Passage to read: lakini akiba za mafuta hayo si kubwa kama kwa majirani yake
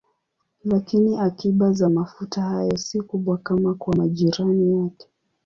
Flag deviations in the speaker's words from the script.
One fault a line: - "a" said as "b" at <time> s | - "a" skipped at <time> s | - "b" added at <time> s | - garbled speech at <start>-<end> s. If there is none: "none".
none